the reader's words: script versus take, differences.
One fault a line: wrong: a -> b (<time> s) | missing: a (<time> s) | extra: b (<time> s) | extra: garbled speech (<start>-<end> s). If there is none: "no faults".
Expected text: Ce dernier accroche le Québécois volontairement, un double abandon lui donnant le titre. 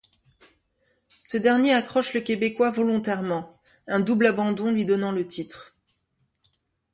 no faults